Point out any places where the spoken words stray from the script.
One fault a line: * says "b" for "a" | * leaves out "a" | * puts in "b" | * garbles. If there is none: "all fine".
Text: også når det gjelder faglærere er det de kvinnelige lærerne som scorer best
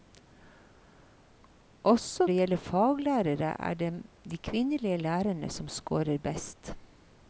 * leaves out "når"